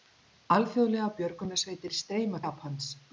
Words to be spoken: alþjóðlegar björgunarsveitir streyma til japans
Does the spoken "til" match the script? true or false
false